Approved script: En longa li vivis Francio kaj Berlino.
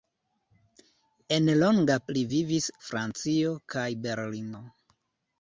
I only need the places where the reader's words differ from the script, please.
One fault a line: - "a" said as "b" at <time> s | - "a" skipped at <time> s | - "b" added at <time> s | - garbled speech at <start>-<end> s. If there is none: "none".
none